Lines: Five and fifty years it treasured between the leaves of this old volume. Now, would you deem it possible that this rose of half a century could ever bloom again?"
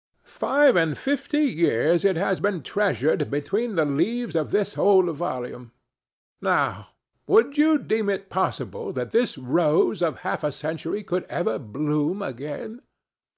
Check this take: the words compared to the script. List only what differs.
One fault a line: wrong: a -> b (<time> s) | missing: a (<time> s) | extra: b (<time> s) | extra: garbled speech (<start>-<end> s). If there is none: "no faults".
extra: has been (2.2 s)